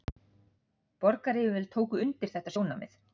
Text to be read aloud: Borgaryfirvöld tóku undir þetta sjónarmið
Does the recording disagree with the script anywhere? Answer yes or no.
no